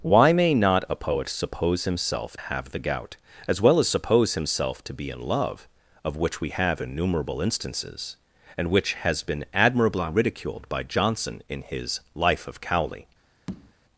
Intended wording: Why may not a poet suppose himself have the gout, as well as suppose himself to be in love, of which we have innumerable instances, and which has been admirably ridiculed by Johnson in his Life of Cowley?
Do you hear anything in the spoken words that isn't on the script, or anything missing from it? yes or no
no